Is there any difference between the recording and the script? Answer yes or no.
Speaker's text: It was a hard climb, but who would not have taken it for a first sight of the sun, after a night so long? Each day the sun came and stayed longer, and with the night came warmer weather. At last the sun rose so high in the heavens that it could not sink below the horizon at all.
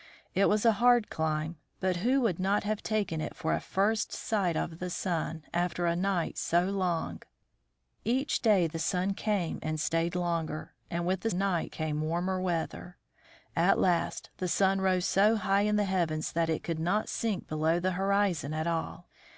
no